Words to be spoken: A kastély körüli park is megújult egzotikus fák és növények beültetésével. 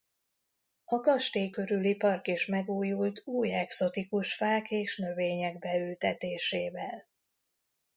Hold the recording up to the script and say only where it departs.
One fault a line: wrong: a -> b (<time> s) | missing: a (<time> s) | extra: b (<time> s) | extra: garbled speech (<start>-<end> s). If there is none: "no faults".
extra: új (3.3 s)